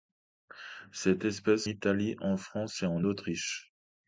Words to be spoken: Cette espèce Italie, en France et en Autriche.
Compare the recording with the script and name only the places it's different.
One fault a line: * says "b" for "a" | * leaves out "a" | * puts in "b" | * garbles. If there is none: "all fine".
all fine